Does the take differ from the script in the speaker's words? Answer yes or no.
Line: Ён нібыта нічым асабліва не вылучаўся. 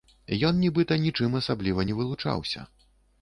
no